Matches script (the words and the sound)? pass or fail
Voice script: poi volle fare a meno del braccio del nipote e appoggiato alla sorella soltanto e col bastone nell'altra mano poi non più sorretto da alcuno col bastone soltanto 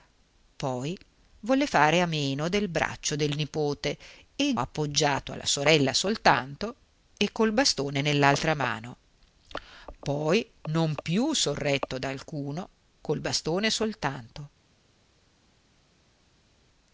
pass